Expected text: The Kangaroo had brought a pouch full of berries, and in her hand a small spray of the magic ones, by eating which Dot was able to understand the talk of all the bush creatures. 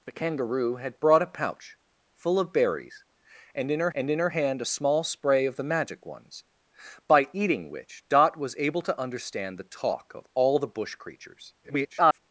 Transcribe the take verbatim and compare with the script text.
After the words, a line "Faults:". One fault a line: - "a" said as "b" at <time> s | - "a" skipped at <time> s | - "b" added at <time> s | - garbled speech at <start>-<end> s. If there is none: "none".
The Kangaroo had brought a pouch full of berries, and in her and in her hand a small spray of the magic ones, by eating which Dot was able to understand the talk of all the bush creatures. [garbled]
Faults:
- "and in her" added at 3.9 s
- garbled speech at 11.6-12.2 s